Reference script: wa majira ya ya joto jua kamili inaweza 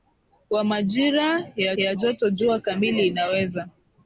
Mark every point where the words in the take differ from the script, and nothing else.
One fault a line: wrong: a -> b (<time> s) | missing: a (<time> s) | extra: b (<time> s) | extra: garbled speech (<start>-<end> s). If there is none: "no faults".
no faults